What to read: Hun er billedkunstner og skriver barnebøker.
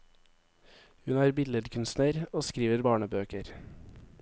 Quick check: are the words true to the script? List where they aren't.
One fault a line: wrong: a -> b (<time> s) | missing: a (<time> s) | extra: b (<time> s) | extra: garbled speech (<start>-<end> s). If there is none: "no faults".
no faults